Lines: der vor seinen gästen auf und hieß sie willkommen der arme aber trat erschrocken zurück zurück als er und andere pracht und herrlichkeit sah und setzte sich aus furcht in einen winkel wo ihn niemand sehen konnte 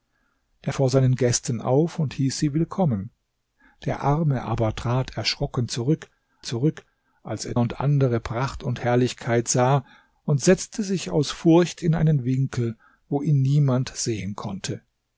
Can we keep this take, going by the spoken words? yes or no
yes